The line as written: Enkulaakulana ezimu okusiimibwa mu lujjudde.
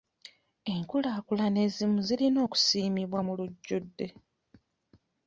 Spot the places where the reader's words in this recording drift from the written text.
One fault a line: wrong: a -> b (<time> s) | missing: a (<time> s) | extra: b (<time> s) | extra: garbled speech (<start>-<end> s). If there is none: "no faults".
extra: zirina (2.1 s)